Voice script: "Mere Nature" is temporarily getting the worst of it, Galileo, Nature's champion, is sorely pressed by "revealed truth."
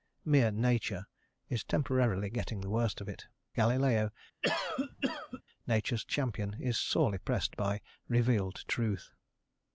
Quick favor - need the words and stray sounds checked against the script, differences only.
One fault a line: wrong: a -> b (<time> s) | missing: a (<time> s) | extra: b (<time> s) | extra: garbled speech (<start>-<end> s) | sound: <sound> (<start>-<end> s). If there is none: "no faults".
sound: cough (4.4-5.4 s)